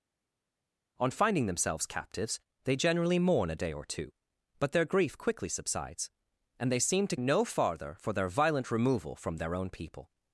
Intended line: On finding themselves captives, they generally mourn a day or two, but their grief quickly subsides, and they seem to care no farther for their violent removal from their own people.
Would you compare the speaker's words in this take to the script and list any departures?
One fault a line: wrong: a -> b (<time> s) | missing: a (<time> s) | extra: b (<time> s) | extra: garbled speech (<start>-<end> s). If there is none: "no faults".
missing: care (7.2 s)